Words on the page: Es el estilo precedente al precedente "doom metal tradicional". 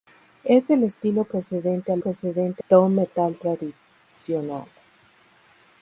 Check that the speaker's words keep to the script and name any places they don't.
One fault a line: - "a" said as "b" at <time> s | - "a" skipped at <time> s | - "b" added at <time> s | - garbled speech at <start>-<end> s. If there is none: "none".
none